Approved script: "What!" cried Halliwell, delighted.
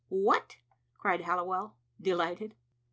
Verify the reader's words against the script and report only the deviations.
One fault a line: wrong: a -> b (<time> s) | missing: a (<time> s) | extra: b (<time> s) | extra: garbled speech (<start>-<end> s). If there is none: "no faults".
no faults